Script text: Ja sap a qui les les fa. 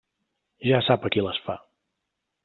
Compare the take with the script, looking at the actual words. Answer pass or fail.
fail